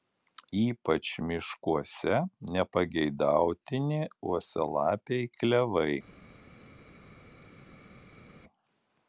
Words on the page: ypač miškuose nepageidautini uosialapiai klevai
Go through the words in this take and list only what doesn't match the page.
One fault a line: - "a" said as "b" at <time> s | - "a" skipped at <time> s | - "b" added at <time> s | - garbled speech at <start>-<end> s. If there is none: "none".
none